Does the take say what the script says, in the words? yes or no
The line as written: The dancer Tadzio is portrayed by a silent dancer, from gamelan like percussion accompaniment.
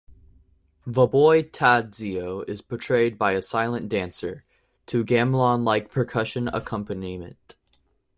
no